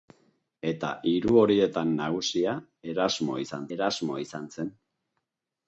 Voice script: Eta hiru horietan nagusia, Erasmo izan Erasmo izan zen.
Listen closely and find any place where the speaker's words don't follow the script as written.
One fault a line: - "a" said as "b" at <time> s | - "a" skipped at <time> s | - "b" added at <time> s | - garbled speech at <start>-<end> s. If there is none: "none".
none